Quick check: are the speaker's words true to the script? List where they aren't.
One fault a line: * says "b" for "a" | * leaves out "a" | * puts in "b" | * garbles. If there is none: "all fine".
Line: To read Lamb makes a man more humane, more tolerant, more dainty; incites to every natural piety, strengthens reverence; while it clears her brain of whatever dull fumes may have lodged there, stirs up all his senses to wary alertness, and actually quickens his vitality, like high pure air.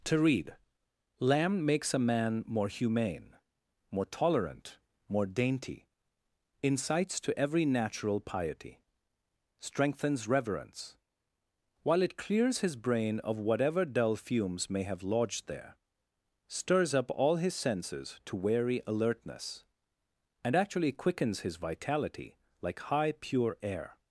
* says "his" for "her"